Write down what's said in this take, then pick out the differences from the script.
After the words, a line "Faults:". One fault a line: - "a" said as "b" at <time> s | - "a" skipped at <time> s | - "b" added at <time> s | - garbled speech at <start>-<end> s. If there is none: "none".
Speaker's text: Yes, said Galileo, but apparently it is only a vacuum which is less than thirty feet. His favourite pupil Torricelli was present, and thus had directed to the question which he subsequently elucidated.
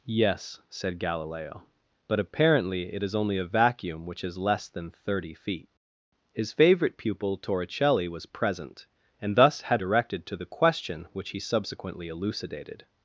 Yes, said Galileo, but apparently it is only a vacuum which is less than thirty feet. His favourite pupil Torricelli was present, and thus had directed to the question which he subsequently elucidated.
Faults:
none